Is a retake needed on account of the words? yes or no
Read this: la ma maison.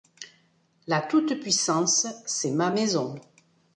yes